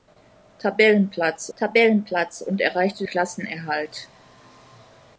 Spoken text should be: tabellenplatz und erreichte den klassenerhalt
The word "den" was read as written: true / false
false